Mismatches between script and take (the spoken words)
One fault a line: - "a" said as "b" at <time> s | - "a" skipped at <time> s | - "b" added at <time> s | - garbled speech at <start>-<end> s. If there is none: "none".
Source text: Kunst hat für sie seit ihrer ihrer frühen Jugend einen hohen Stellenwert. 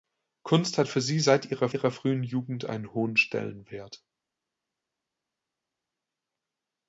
none